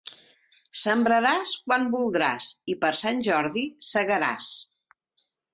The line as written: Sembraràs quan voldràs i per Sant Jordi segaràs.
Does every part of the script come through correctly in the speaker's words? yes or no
yes